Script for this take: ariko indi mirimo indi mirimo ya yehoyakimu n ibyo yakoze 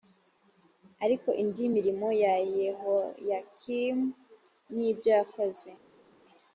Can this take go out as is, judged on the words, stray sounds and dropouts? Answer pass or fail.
fail